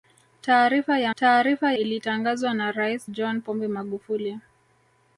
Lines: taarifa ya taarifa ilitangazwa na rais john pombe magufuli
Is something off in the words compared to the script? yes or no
no